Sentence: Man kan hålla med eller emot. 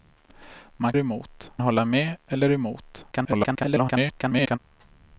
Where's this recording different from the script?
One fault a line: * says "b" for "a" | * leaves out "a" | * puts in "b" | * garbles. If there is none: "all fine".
* says "emot" for "kan"
* garbles